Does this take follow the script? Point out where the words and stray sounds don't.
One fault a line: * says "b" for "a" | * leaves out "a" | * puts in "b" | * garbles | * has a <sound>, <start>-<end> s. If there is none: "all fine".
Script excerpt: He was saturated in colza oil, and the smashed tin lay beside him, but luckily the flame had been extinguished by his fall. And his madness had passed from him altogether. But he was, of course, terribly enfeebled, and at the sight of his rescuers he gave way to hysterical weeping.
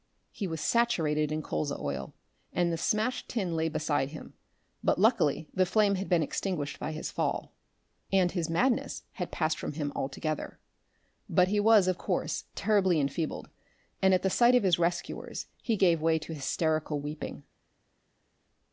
all fine